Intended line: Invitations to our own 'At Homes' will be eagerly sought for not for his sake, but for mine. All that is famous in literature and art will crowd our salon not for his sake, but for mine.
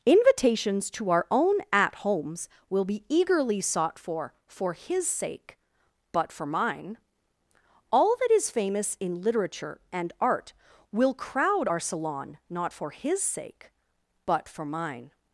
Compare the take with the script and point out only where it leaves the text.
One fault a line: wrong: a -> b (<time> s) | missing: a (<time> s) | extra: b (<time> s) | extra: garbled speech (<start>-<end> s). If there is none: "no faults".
missing: not (4.3 s)